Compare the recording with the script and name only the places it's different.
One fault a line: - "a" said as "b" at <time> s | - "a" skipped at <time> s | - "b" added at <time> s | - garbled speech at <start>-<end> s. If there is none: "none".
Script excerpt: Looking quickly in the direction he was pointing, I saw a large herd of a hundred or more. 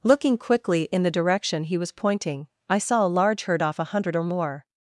- "of" said as "off" at 3.6 s